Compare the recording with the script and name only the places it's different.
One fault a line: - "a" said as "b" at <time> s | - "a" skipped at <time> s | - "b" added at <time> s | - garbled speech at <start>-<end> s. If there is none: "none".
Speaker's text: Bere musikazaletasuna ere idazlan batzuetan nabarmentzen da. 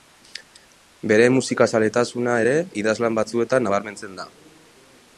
none